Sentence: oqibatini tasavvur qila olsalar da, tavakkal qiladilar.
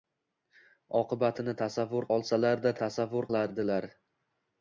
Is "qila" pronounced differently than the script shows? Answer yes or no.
yes